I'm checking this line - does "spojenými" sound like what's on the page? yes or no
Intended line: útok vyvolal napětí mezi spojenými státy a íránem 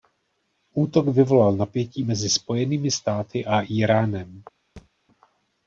yes